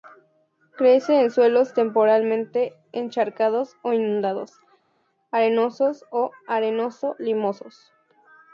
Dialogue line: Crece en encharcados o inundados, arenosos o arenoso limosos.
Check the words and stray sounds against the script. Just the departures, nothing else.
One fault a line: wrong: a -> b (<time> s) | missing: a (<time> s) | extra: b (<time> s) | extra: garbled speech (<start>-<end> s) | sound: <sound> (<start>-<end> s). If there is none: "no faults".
extra: suelos temporalmente (1.3 s)